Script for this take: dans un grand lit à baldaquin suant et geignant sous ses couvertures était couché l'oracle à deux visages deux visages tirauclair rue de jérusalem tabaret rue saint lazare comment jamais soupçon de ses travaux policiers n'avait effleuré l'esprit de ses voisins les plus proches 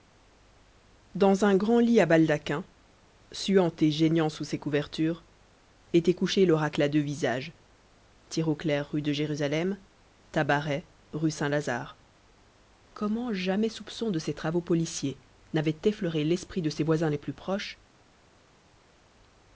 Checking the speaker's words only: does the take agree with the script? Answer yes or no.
no